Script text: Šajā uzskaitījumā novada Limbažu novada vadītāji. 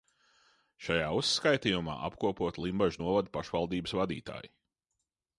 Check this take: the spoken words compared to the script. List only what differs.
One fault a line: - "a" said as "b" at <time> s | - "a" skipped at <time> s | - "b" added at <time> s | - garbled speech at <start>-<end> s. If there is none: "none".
- "novada" said as "apkopoti" at 2.1 s
- "pašvaldības" added at 3.4 s